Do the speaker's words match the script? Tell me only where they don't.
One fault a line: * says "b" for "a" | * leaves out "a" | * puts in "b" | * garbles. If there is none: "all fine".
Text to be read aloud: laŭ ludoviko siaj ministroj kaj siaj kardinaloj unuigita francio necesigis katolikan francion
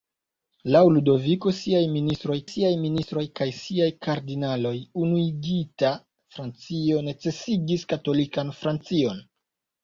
* puts in "siaj ministroj"